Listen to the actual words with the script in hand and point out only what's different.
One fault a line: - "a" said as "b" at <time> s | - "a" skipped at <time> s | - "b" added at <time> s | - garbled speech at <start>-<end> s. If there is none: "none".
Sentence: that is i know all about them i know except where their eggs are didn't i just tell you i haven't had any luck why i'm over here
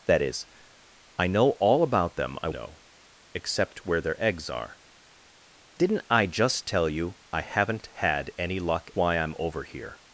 none